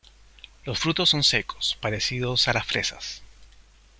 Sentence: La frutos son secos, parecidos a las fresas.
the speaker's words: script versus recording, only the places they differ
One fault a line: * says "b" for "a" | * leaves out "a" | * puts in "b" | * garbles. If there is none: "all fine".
* says "Los" for "La"